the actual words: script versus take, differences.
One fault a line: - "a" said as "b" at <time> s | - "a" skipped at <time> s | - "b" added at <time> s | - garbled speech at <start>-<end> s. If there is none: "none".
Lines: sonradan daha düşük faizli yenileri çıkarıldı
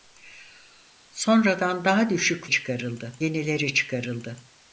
- "faizli" said as "çıkarıldı" at 2.5 s